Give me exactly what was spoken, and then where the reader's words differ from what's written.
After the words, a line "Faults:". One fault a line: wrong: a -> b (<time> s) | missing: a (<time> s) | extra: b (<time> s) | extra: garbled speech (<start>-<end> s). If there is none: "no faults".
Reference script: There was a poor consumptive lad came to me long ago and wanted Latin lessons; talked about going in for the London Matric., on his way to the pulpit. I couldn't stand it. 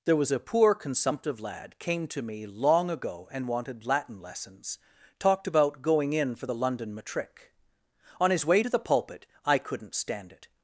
There was a poor consumptive lad came to me long ago and wanted Latin lessons; talked about going in for the London Matric., on his way to the pulpit. I couldn't stand it.
Faults:
no faults